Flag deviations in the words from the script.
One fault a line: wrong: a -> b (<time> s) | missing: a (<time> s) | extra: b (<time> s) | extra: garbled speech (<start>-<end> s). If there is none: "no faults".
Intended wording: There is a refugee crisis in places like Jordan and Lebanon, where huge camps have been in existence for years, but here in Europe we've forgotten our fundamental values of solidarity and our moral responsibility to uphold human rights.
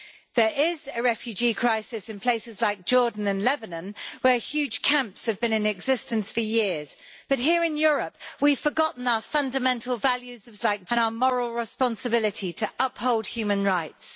wrong: solidarity -> like (10.6 s)